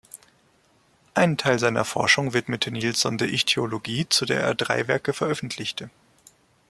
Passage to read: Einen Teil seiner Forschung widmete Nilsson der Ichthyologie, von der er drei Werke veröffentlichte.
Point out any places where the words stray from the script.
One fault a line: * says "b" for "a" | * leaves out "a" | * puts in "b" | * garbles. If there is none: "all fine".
* says "zu" for "von"